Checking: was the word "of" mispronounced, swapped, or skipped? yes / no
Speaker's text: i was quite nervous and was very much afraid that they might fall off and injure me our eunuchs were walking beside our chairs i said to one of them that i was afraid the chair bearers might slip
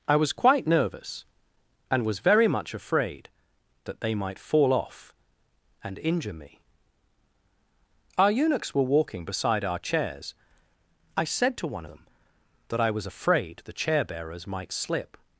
yes